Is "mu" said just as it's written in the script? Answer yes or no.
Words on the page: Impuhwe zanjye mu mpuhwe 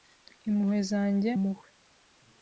no